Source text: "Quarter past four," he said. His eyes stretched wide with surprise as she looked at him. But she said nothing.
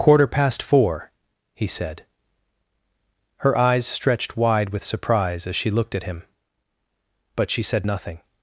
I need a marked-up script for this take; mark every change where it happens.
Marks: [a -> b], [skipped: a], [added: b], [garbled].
"Quarter past four," he said. [His -> Her] eyes stretched wide with surprise as she looked at him. But she said nothing.